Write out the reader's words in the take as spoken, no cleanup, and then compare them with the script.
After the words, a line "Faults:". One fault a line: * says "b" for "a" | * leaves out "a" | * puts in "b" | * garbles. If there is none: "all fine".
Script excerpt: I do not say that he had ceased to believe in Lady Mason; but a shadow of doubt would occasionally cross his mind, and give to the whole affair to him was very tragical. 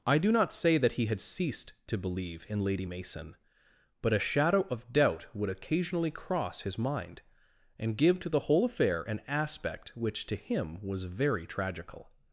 I do not say that he had ceased to believe in Lady Mason; but a shadow of doubt would occasionally cross his mind, and give to the whole affair an aspect which to him was very tragical.
Faults:
* puts in "an aspect which"